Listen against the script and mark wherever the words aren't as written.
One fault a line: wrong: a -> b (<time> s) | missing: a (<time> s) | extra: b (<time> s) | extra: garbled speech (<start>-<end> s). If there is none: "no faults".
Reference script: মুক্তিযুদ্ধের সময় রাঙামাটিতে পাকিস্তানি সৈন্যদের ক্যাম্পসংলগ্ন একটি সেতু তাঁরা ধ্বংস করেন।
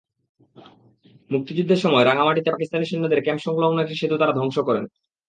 no faults